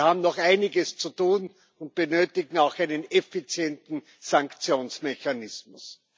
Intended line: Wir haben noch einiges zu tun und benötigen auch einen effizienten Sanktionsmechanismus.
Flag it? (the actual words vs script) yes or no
no